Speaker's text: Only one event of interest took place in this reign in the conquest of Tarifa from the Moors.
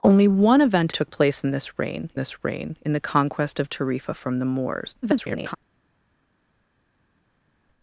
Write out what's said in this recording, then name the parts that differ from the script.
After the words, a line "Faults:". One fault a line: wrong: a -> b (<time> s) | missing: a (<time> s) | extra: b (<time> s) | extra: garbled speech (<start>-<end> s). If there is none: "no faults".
Only one event took place in this reign this reign in the conquest of Tarifa from the Moors. [garbled]
Faults:
missing: of interest (0.9 s)
extra: this reign (2.2 s)
extra: garbled speech (5.0-5.6 s)